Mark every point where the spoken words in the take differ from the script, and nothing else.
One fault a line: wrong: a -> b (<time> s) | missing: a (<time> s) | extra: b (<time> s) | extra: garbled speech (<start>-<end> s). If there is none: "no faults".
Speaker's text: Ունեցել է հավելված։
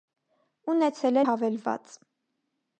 no faults